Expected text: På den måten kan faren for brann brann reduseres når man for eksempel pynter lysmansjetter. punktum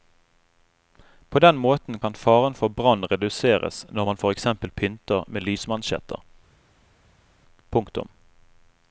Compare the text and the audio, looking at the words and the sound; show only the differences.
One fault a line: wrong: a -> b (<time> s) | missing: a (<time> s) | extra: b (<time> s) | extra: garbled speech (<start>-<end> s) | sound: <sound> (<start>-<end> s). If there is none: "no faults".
missing: brann (3.0 s)
extra: med (5.3 s)